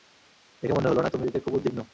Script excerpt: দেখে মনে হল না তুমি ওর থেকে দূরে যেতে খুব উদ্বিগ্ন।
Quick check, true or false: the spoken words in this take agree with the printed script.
false